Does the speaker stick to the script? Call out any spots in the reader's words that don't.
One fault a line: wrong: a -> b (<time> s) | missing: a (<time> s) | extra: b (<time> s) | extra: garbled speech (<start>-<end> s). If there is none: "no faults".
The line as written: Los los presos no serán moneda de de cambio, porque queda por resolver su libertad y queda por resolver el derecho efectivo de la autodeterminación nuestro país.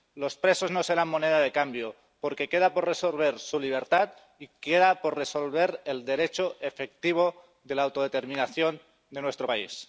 missing: los (0.3 s)
missing: de (1.5 s)
extra: de (9.1 s)